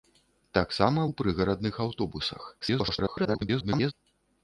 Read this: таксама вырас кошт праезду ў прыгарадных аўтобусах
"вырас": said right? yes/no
no